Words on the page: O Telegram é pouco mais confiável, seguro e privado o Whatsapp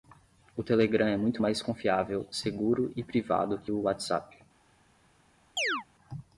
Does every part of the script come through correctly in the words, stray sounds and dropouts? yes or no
no